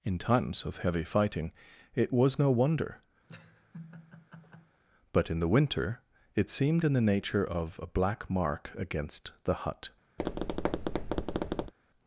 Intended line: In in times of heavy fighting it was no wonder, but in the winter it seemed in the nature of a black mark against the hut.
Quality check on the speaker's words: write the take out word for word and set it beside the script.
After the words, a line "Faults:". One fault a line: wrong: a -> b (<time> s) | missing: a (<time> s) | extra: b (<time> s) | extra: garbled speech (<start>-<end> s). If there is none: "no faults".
In times of heavy fighting it was no wonder, but in the winter it seemed in the nature of a black mark against the hut.
Faults:
missing: in (0.2 s)